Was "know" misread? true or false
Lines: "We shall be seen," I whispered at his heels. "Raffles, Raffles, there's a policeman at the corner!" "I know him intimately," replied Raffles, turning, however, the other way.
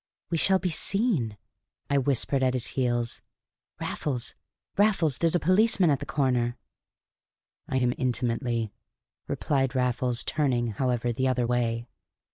true